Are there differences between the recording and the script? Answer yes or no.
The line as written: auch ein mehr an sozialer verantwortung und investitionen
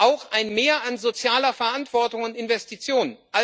no